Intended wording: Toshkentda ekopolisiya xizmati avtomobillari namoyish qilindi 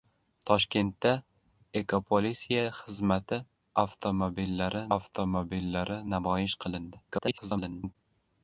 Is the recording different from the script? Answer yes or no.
yes